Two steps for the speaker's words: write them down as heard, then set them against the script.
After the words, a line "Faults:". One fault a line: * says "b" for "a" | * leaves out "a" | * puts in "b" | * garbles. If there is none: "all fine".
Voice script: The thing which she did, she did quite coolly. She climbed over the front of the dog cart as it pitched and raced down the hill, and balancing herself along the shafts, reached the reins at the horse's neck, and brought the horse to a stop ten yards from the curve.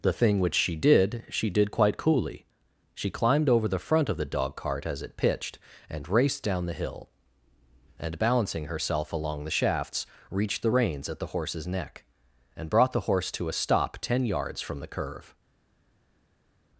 The thing which she did, she did quite coolly. She climbed over the front of the dog cart as it pitched and raced down the hill, and balancing herself along the shafts, reached the reins at the horse's neck, and brought the horse to a stop ten yards from the curve.
Faults:
all fine